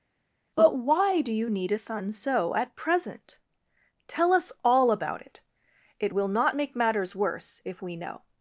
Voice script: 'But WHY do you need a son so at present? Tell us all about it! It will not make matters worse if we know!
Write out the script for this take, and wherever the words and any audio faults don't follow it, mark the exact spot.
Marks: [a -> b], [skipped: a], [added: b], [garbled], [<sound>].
'But WHY do you need a son so at present? Tell us all about it! It will not make matters worse if we know!